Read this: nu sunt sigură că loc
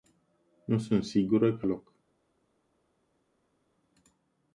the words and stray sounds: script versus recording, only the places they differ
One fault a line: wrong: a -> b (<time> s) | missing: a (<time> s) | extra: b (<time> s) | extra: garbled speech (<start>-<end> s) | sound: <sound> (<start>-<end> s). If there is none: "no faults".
no faults